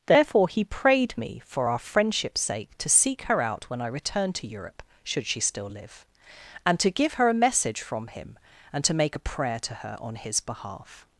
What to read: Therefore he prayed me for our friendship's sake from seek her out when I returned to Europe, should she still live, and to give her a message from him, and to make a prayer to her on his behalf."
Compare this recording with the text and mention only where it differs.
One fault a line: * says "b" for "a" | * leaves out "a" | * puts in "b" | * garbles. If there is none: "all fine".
* says "to" for "from"